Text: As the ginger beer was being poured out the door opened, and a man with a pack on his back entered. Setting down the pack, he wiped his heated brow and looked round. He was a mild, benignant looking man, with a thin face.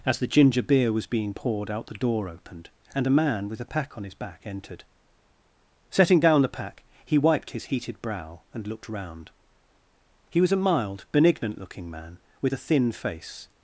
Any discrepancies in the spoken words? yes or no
no